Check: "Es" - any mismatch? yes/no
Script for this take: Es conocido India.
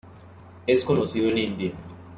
no